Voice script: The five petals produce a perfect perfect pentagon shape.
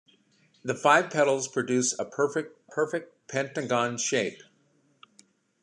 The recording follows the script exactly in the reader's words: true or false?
true